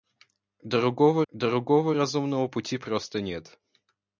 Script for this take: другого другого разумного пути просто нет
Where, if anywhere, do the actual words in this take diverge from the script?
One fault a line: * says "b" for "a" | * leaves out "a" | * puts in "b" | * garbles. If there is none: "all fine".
all fine